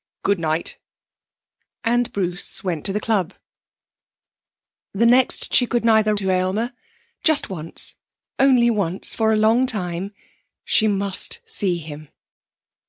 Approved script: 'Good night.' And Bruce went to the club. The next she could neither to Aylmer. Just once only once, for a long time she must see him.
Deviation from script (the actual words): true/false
false